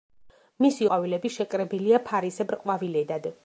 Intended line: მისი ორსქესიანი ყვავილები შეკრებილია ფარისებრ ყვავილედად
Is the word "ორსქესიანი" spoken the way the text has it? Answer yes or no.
no